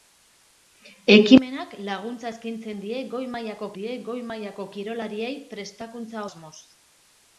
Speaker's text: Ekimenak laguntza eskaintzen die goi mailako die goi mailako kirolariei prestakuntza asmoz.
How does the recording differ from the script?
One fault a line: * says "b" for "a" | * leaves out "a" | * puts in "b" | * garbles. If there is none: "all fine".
all fine